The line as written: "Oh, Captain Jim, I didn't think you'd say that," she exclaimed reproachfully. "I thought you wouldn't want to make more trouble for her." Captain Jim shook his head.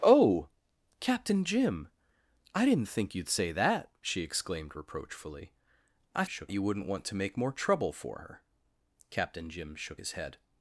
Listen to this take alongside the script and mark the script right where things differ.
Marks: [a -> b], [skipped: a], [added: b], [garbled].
"Oh, Captain Jim, I didn't think you'd say that," she exclaimed reproachfully. "I [thought -> shook] you wouldn't want to make more trouble for her." Captain Jim shook his head.